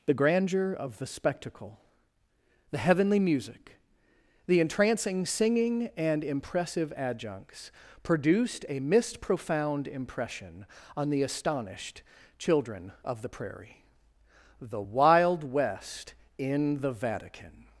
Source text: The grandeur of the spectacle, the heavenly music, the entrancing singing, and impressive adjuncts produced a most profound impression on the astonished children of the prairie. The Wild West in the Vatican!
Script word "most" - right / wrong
wrong